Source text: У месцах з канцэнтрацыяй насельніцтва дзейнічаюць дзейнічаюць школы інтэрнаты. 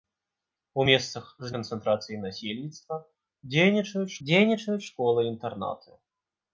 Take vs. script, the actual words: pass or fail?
pass